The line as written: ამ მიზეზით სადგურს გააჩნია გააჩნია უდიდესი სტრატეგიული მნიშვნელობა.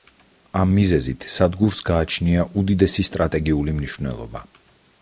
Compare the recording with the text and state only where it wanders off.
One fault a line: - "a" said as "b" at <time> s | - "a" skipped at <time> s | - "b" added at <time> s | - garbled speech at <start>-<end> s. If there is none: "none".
- "გააჩნია" skipped at 2.5 s